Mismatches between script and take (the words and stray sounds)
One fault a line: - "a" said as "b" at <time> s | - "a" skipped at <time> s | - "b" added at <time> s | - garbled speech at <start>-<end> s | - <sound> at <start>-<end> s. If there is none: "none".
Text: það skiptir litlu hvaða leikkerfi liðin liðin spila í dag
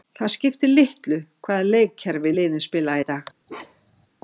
- "liðin" skipped at 2.6 s
- bark at 3.5-4.1 s